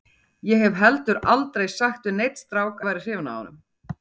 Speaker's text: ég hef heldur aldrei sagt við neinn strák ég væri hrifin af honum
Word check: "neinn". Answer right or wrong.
right